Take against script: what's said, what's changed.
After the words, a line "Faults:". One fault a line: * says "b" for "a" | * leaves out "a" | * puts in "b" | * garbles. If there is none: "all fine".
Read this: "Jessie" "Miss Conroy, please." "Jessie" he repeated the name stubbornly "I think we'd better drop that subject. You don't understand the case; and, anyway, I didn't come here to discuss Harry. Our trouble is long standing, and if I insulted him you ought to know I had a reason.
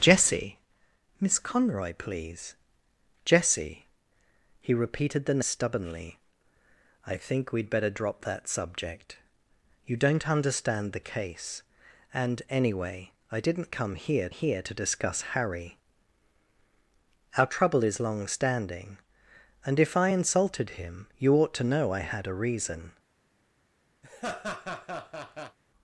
"Jessie" "Miss Conroy, please." "Jessie" he repeated the stubbornly "I think we'd better drop that subject. You don't understand the case; and, anyway, I didn't come here here to discuss Harry. Our trouble is long standing, and if I insulted him you ought to know I had a reason.
Faults:
* leaves out "name"
* puts in "here"